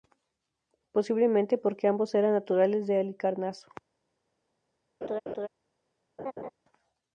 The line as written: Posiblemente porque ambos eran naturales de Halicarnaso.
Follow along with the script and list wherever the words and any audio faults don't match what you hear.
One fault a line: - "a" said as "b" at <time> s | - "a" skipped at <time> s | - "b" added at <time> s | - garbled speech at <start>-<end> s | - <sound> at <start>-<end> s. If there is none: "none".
- laugh at 5.0-5.5 s
- laugh at 6.2-6.5 s